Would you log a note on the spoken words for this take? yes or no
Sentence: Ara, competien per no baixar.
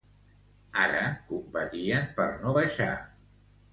no